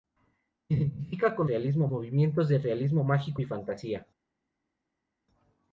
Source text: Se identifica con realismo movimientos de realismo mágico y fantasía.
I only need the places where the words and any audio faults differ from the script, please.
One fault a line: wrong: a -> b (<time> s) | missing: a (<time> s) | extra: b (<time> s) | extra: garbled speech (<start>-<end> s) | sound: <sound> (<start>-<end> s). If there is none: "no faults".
no faults